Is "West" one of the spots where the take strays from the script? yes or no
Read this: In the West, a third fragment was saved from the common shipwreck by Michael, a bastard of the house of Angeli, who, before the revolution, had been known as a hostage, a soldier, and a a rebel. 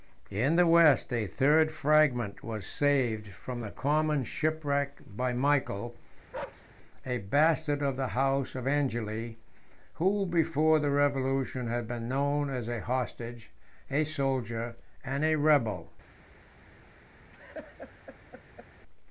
no